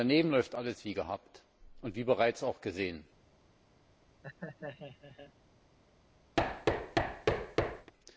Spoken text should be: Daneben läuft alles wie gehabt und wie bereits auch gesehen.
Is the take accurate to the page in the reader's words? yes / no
yes